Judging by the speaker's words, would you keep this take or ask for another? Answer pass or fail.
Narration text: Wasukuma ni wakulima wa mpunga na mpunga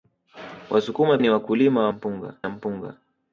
pass